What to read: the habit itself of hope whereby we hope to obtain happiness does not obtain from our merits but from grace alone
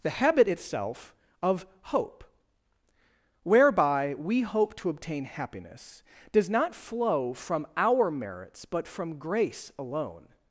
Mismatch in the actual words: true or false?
true